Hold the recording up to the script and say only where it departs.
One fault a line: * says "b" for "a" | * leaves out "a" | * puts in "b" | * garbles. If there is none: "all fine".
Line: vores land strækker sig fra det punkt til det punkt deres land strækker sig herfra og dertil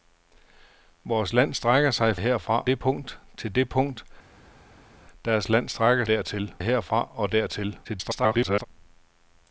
* says "herfra" for "fra"
* says "dertil" for "sig"
* garbles